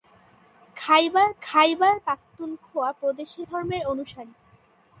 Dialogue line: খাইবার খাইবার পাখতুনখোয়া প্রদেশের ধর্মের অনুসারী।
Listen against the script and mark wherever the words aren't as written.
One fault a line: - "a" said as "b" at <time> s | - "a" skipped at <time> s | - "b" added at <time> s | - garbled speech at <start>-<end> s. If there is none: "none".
none